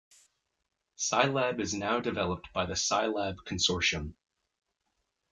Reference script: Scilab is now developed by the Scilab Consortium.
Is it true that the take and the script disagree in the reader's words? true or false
false